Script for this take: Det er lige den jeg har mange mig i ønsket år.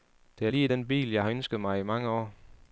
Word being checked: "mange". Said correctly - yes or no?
no